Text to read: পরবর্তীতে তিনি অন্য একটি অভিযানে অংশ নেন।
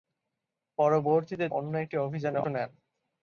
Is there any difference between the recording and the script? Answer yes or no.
yes